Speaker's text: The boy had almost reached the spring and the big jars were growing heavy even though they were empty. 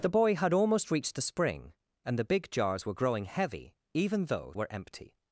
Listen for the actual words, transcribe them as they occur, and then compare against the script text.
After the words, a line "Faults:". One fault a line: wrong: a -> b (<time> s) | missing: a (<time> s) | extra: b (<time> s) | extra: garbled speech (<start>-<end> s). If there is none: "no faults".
The boy had almost reached the spring and the big jars were growing heavy even though were empty.
Faults:
missing: they (4.5 s)